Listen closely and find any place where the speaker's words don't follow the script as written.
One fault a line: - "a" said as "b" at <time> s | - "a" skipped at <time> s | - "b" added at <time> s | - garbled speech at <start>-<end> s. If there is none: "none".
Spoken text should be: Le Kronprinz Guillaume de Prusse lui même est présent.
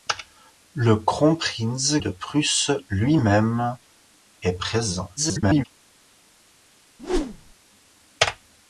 - "Guillaume" skipped at 2.0 s
- garbled speech at 5.2-5.6 s